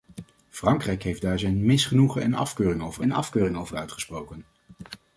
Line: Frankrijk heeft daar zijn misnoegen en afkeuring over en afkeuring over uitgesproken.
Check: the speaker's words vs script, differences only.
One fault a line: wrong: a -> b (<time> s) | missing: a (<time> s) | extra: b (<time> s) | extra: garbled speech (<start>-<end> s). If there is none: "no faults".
no faults